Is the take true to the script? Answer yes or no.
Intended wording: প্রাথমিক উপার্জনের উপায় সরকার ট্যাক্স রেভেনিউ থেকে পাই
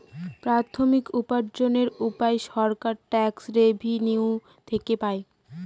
yes